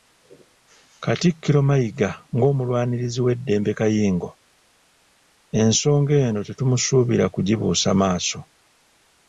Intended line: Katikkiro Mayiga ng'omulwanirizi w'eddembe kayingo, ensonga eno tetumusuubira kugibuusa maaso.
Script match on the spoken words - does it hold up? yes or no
yes